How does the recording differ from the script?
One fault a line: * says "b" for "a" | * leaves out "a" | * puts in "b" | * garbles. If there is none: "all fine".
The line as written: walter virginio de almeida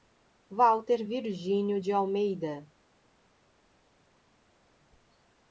all fine